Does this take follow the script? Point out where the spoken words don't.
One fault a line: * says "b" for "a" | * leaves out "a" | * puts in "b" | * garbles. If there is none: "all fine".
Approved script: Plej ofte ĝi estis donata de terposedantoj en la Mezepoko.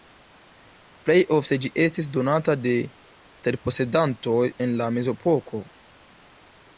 all fine